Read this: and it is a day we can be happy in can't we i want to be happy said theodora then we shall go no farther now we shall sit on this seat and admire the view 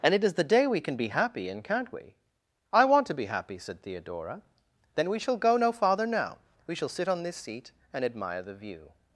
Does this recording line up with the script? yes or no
no